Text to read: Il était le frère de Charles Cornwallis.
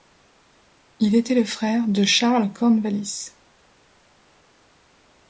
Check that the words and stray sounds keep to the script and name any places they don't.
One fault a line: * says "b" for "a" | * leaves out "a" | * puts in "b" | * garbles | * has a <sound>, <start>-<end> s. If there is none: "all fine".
all fine